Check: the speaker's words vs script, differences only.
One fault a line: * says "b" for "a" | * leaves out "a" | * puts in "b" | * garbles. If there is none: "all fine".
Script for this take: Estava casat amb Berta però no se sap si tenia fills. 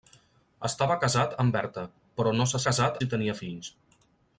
* says "casat" for "sap"